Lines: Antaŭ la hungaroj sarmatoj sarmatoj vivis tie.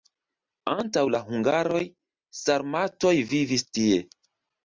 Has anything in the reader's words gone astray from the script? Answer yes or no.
yes